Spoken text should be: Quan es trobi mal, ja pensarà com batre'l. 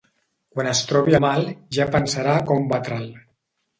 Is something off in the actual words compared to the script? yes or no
no